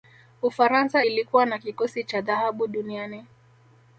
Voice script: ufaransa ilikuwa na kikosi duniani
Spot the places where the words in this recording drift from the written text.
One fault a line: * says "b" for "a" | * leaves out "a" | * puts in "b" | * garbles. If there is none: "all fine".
* puts in "cha dhahabu"